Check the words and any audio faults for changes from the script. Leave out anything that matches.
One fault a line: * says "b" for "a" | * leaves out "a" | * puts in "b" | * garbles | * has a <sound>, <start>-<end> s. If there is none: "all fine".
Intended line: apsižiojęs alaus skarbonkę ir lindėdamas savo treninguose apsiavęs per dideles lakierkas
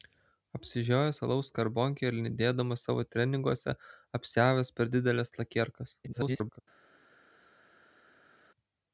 * garbles